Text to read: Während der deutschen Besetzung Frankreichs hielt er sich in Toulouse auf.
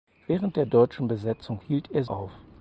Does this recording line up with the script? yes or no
no